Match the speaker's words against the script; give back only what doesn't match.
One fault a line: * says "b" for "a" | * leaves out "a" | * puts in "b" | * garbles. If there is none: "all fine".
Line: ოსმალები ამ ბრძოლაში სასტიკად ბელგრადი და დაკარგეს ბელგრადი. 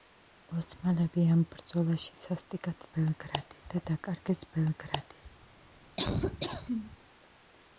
all fine